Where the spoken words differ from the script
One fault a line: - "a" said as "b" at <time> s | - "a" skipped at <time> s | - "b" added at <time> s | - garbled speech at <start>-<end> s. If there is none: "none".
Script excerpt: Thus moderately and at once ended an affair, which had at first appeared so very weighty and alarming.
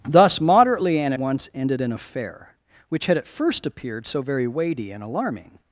- "at" skipped at 1.1 s